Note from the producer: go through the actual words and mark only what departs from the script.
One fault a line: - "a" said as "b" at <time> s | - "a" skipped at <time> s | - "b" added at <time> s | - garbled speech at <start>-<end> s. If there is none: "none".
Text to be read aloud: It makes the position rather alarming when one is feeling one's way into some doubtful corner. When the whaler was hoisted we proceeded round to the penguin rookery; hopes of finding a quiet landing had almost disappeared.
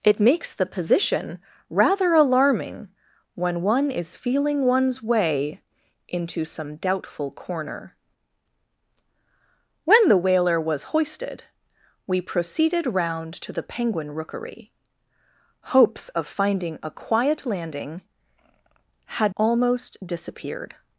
none